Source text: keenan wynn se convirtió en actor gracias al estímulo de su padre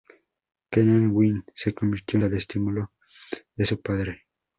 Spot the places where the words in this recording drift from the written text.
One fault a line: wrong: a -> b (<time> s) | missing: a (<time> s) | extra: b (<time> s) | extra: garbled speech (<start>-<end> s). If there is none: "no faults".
missing: en actor gracias (2.2 s)